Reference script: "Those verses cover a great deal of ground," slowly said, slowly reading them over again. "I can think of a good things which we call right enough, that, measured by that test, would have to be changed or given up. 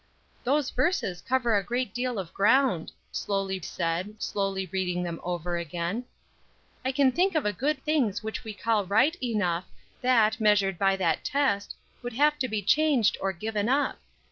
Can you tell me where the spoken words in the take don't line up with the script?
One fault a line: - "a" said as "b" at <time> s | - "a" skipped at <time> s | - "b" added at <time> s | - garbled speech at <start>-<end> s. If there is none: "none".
none